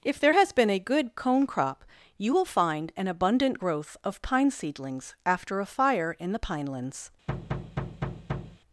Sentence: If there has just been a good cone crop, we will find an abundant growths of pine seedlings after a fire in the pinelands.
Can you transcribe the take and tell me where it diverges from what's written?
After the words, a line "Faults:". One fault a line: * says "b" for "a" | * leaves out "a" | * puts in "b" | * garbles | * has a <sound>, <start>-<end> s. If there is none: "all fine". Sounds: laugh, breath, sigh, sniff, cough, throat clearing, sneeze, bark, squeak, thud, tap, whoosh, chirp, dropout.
If there has been a good cone crop, you will find an abundant growth of pine seedlings after a fire in the pinelands.
Faults:
* leaves out "just"
* says "you" for "we"
* says "growth" for "growths"
* has a thud, 7.3-8.6 s